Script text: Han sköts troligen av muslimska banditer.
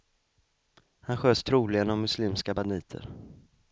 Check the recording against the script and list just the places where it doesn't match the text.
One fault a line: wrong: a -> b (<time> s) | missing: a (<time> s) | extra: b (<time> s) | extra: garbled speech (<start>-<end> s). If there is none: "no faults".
no faults